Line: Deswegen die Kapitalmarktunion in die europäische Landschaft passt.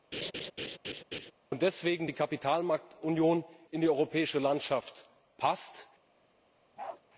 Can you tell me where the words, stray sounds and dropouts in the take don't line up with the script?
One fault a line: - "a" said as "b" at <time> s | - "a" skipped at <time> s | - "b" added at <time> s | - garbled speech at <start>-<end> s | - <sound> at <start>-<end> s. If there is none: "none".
- laugh at 0.1-1.3 s
- bark at 6.8-7.0 s